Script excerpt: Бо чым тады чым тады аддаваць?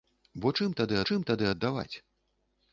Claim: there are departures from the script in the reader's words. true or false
false